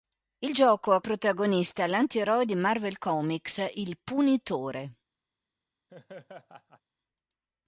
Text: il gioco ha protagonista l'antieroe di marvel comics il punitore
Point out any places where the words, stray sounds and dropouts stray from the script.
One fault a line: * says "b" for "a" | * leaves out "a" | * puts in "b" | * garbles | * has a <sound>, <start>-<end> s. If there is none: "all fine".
* has a laugh, 5.9-6.8 s